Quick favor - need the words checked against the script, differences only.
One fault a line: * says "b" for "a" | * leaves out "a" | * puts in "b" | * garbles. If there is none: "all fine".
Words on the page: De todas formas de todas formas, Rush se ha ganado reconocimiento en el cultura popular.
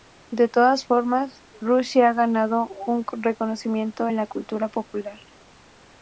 * leaves out "de todas formas"
* puts in "un"
* says "la" for "el"